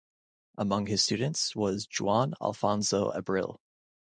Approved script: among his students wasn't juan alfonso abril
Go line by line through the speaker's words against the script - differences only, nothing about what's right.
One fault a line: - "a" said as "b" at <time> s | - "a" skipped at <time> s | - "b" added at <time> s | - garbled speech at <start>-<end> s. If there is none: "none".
- "wasn't" said as "was" at 1.6 s